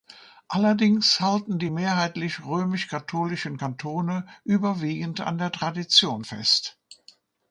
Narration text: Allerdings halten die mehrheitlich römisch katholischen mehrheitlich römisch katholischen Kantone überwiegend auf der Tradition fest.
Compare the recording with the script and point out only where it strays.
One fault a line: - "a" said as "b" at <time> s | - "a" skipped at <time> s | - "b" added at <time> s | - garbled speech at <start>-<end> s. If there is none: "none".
- "mehrheitlich römisch katholischen" skipped at 3.6 s
- "auf" said as "an" at 5.2 s